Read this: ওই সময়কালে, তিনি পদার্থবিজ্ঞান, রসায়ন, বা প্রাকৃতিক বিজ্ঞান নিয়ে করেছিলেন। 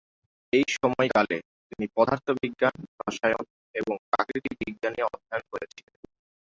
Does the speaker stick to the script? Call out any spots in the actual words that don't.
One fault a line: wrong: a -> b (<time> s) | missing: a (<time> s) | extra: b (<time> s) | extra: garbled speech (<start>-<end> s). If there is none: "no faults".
wrong: ওই -> এই (0.5 s)
wrong: বা -> এবং (3.7 s)
extra: অধ্যয়ন (5.1 s)